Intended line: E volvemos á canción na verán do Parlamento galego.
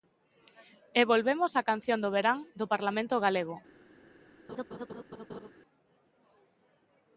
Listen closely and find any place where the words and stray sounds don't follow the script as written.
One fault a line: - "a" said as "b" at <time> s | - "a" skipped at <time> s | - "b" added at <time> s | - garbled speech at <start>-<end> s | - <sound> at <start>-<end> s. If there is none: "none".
- "na" said as "do" at 2.0 s
- laugh at 4.5-5.5 s